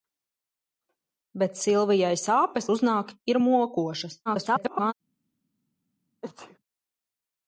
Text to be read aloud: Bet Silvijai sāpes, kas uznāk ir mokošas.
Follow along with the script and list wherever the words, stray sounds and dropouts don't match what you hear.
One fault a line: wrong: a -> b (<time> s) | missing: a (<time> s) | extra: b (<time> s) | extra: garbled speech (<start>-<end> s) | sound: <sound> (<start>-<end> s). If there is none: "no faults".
missing: kas (2.7 s)
extra: garbled speech (4.3-4.9 s)
sound: sneeze (6.2-6.6 s)